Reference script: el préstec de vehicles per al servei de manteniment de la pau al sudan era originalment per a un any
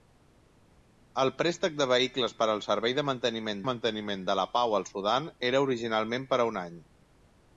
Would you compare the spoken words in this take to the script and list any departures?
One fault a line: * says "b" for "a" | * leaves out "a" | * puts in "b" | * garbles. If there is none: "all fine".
* puts in "manteniment"